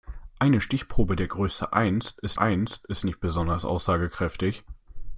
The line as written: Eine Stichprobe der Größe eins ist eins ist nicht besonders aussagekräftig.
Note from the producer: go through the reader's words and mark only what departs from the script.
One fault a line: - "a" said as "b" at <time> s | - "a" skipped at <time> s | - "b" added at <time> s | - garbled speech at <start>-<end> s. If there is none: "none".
none